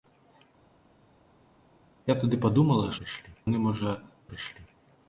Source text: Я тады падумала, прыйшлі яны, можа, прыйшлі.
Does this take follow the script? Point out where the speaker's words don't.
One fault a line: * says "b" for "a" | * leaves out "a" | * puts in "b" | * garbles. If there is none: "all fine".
all fine